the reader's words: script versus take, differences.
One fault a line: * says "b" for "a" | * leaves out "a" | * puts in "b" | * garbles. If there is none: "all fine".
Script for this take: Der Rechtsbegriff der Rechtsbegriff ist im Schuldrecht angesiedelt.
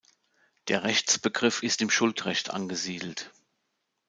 * leaves out "der Rechtsbegriff"